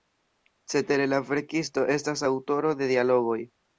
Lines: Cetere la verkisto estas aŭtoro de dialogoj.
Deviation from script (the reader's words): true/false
false